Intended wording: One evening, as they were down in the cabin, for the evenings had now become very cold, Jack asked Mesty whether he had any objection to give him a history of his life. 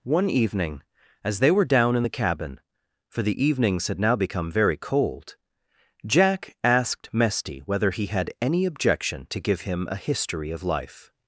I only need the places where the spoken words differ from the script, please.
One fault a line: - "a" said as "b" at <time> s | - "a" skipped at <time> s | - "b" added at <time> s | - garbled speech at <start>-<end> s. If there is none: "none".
- "his" skipped at 10.6 s